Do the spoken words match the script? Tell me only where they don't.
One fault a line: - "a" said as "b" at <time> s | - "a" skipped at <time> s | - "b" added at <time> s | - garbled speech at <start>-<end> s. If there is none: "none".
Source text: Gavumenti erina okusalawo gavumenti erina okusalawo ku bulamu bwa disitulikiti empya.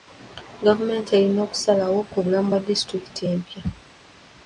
- "gavumenti erina okusalawo" skipped at 2.0 s